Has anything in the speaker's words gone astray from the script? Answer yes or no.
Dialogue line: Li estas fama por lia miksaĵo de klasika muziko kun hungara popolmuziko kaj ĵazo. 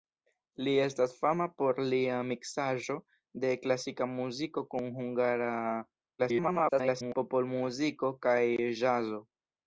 yes